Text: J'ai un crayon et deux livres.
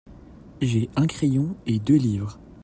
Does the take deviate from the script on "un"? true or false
false